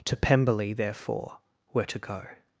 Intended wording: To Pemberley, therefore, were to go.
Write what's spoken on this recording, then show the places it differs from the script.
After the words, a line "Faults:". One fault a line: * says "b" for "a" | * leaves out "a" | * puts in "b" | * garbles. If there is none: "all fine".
To Pemberley, therefore, were to go.
Faults:
all fine